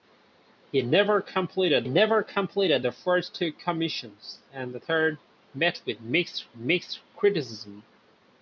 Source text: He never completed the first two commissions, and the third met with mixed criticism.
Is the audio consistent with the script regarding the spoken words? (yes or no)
no